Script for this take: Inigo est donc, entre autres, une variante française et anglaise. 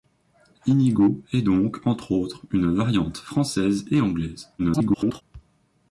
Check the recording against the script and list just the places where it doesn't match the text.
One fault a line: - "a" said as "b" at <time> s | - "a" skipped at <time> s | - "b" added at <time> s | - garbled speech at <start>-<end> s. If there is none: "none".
- garbled speech at 4.6-5.2 s